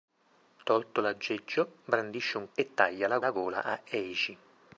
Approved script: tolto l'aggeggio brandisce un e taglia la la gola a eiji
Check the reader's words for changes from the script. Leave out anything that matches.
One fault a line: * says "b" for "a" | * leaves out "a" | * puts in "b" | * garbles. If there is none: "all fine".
all fine